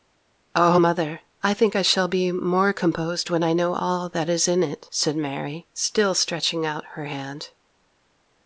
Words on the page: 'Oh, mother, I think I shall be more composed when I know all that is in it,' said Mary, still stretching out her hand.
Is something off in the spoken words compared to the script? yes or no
no